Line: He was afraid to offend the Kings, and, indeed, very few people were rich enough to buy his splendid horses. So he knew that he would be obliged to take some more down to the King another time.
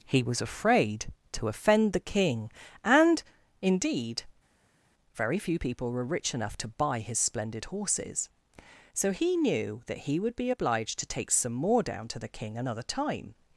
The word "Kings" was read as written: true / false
false